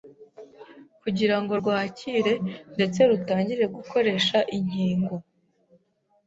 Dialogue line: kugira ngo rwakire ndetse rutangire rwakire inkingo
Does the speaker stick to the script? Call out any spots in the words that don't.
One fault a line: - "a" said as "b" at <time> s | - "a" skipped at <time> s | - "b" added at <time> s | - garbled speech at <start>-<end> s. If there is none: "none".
- "rwakire" said as "gukoresha" at 3.7 s